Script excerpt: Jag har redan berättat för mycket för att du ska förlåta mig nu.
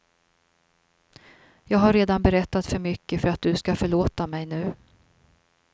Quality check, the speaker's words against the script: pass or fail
pass